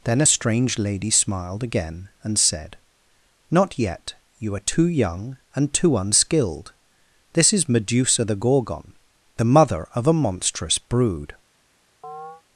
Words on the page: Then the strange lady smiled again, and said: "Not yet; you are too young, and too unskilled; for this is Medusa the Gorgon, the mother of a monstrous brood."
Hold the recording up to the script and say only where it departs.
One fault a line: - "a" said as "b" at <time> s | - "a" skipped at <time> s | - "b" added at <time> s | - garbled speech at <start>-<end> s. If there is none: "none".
- "the" said as "a" at 0.2 s
- "for" skipped at 6.7 s